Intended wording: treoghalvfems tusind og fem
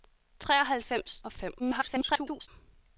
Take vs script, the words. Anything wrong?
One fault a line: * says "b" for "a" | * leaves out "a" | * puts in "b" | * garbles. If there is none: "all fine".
* leaves out "tusind"
* garbles